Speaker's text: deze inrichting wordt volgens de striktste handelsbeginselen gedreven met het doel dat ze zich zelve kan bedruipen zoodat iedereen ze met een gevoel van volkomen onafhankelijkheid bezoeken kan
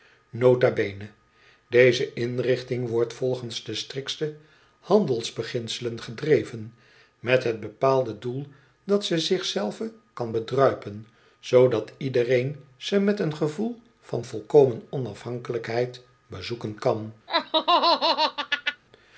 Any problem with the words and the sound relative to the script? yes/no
yes